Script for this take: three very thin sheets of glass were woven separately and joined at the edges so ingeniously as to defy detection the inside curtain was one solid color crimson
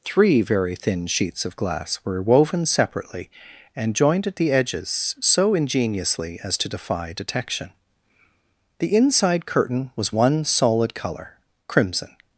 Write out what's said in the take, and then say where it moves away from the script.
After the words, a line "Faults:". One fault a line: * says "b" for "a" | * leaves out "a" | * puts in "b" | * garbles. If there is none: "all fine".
three very thin sheets of glass were woven separately and joined at the edges so ingeniously as to defy detection the inside curtain was one solid color crimson
Faults:
all fine